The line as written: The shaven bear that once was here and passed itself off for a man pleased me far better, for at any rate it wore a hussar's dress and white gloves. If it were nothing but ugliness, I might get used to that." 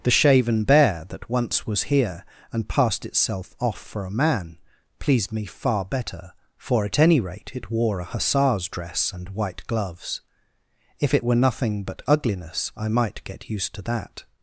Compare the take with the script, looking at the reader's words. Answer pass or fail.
pass